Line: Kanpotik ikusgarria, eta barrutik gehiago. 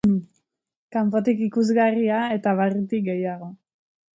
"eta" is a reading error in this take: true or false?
false